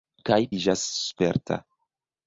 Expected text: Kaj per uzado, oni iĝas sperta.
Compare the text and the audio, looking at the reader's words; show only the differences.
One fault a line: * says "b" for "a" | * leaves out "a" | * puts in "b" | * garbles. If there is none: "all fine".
* leaves out "per uzado oni"